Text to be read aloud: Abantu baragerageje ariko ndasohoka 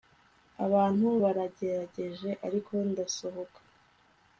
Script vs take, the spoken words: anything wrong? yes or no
no